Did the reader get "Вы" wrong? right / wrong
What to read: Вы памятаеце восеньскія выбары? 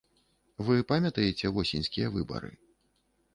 right